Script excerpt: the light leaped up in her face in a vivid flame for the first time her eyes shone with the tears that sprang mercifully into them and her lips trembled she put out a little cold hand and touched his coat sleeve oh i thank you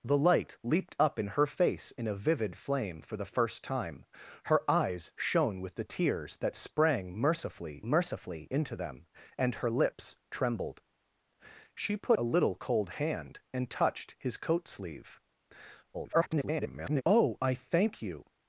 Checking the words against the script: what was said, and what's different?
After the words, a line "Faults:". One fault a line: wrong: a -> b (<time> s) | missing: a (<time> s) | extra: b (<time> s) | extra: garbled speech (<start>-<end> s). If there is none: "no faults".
the light leaped up in her face in a vivid flame for the first time her eyes shone with the tears that sprang mercifully mercifully into them and her lips trembled she put a little cold hand and touched his coat sleeve [garbled] oh i thank you
Faults:
extra: mercifully (7.8 s)
missing: out (12.2 s)
extra: garbled speech (15.9-17.0 s)